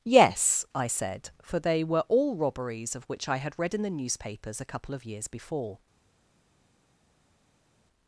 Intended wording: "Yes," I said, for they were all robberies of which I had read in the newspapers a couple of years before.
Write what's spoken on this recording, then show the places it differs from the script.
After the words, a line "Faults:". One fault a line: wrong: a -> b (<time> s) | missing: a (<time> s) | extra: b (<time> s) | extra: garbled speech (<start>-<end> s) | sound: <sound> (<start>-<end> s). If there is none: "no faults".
"Yes," I said, for they were all robberies of which I had read in the newspapers a couple of years before.
Faults:
no faults